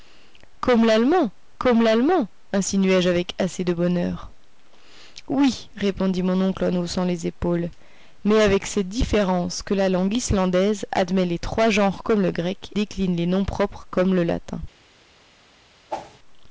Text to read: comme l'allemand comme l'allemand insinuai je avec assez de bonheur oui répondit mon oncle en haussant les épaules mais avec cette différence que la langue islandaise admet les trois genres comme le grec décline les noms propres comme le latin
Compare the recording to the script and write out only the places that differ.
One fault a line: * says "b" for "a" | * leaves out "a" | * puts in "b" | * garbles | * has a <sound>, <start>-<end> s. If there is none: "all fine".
* has a whoosh, 15.9-16.2 s